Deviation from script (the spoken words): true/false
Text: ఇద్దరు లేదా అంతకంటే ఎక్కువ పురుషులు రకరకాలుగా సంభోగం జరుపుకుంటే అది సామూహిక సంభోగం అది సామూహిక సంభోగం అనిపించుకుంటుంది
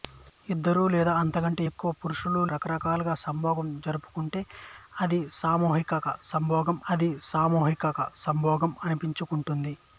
false